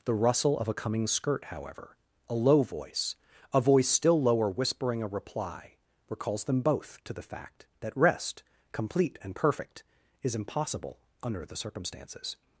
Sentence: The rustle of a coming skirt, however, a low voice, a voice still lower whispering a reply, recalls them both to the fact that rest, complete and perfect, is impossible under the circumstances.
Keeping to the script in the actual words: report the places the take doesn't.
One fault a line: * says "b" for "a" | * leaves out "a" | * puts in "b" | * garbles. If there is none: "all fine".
all fine